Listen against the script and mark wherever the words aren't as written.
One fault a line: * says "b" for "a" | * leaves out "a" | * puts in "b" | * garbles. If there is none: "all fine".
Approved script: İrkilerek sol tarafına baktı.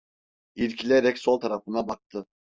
all fine